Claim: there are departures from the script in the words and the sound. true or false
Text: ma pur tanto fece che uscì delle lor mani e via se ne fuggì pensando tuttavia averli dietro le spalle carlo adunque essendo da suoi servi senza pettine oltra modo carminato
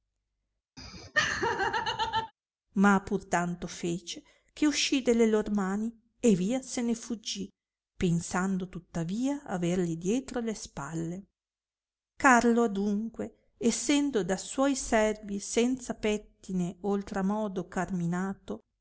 true